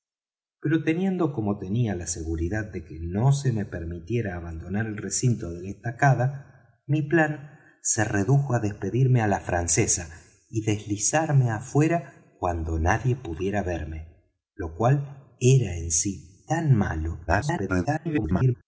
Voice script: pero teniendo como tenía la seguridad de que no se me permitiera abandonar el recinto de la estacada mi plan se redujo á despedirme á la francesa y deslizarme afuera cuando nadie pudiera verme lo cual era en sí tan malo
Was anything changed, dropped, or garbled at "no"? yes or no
no